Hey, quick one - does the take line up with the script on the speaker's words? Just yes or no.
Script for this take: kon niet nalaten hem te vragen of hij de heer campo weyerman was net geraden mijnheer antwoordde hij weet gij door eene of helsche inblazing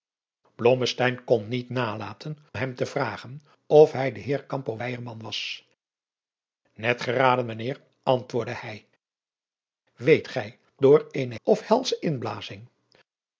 yes